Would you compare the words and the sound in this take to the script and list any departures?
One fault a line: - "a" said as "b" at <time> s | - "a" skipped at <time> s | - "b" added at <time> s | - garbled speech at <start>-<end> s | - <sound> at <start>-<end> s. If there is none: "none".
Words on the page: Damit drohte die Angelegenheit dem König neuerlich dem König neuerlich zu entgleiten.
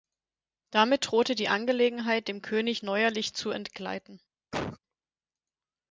- "dem König neuerlich" skipped at 3.4 s
- cough at 4.5-4.8 s